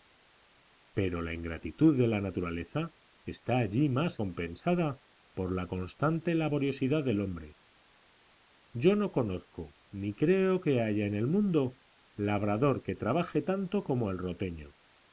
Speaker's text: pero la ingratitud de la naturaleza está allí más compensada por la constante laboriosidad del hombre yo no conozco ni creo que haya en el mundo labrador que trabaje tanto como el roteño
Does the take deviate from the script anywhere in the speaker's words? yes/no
no